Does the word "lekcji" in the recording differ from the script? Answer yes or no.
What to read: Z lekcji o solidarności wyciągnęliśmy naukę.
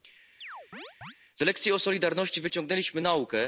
no